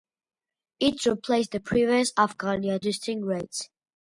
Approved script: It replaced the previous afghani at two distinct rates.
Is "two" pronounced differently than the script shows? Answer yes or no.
yes